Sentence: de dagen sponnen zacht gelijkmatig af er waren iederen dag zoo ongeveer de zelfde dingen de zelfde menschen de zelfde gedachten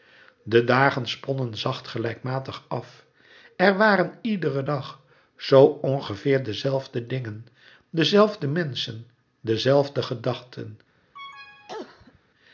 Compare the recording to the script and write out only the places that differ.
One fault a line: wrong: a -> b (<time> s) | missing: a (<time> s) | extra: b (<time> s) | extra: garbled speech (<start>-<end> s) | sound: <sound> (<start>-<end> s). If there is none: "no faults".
sound: cough (11.1-12.2 s)